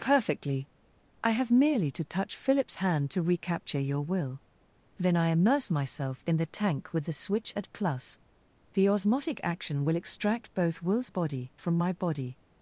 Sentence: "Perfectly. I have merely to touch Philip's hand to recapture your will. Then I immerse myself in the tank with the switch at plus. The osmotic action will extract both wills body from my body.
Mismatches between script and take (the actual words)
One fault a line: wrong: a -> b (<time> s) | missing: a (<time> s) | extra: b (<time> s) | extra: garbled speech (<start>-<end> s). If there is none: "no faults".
no faults